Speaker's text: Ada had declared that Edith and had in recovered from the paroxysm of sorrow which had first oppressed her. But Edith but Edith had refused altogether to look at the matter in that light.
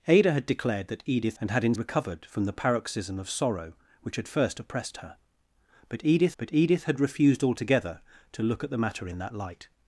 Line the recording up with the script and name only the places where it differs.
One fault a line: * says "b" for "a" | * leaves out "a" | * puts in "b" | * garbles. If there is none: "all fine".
all fine